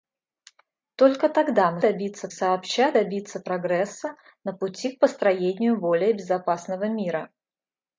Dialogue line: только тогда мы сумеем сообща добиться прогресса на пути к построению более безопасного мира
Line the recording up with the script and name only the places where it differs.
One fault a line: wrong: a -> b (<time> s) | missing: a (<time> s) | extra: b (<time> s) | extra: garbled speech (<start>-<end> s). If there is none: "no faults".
wrong: сумеем -> добиться (1.8 s)